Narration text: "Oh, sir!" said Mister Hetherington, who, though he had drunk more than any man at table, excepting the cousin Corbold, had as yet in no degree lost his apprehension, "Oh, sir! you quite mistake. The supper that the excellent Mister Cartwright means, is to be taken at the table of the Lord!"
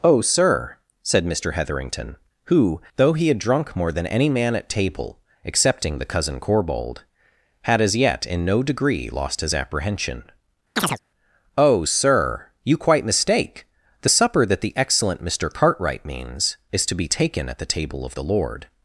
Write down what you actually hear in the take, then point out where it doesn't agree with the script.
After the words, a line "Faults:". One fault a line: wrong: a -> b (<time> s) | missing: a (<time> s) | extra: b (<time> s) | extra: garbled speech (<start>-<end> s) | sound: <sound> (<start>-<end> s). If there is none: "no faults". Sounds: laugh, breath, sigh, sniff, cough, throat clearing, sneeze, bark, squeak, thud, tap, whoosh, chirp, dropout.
"Oh, sir!" said Mister Hetherington, who, though he had drunk more than any man at table, excepting the cousin Corbold, had as yet in no degree lost his apprehension, "Oh, sir! you quite mistake. The supper that the excellent Mister Cartwright means, is to be taken at the table of the Lord!"
Faults:
sound: chirp (10.8-11.0 s)